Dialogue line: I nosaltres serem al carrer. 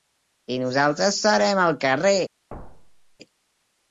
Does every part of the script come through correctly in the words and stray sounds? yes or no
no